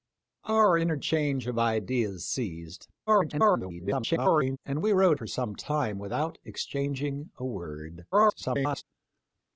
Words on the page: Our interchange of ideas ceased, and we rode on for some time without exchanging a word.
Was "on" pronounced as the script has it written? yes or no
no